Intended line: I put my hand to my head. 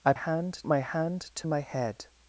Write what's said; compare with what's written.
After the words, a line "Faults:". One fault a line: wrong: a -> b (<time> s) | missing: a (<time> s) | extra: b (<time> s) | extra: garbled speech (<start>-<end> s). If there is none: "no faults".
I hand my hand to my head.
Faults:
wrong: put -> hand (0.1 s)